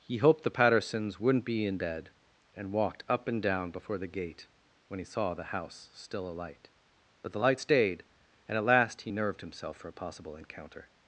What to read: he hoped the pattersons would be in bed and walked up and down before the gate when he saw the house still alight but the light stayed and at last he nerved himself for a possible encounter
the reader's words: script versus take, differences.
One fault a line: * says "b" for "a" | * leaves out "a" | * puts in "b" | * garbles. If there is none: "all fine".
* says "wouldn't" for "would"